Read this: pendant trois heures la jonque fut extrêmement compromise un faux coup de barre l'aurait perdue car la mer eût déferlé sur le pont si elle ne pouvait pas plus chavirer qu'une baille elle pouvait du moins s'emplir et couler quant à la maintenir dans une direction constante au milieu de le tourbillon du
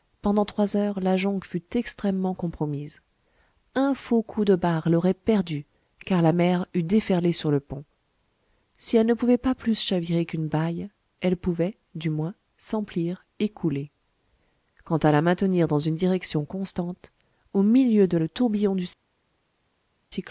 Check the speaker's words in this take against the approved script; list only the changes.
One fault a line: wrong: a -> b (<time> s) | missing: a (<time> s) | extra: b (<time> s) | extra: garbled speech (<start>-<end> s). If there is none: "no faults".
no faults